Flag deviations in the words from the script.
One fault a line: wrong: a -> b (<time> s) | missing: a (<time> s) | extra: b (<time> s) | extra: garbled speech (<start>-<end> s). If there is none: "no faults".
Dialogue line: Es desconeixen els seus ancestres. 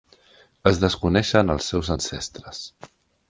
no faults